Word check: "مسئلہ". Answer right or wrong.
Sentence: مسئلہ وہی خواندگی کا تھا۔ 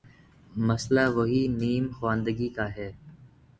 right